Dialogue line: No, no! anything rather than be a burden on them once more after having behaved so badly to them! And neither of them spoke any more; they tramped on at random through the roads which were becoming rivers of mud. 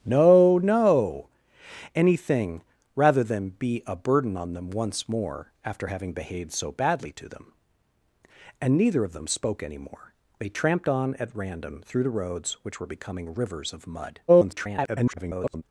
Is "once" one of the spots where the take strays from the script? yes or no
no